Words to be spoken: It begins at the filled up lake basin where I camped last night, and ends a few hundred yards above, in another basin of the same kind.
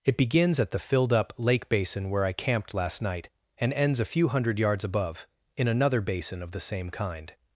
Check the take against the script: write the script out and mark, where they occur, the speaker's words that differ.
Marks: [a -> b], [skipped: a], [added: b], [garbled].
It begins at the filled up lake basin where I camped last night, and ends a few hundred yards above, in another basin of the same kind.